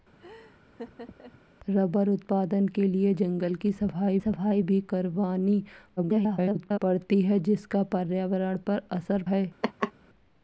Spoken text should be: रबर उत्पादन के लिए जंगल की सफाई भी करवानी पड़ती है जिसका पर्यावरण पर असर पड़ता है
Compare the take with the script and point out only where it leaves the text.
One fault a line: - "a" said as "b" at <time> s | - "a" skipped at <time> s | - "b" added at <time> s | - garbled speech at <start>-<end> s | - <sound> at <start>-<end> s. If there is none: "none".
- laugh at 0.2-1.4 s
- "सफाई" added at 4.2 s
- garbled speech at 6.0-6.8 s
- "पड़ता" skipped at 9.2 s
- laugh at 9.6-9.9 s